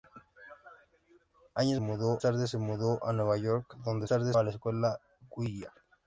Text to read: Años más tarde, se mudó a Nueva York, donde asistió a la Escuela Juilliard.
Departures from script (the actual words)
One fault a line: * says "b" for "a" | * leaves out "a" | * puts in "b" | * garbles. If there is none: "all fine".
* says "mudó" for "más"
* says "tarde" for "asistió"